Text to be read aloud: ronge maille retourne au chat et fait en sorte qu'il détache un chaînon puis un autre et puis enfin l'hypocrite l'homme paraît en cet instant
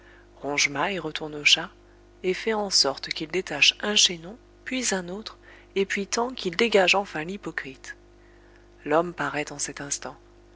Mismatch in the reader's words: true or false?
true